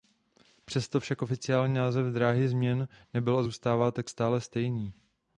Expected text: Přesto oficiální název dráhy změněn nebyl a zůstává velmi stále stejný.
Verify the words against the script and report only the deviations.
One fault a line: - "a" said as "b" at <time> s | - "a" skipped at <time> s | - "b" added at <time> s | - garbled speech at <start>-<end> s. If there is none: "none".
- "však" added at 1.0 s
- "velmi" said as "tak" at 3.9 s